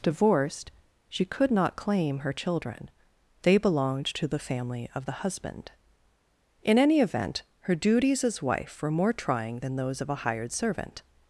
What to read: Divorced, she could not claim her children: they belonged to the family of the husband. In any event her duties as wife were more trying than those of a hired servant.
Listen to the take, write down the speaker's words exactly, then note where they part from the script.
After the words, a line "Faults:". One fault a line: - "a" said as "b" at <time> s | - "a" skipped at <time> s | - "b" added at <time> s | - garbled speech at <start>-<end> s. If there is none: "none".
Divorced, she could not claim her children: they belonged to the family of the husband. In any event her duties as wife were more trying than those of a hired servant.
Faults:
none